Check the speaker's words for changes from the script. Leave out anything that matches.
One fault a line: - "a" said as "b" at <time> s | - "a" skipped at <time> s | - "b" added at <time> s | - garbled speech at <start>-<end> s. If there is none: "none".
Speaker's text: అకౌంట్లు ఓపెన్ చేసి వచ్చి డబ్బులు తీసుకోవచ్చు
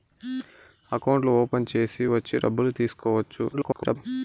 - garbled speech at 3.5-4.0 s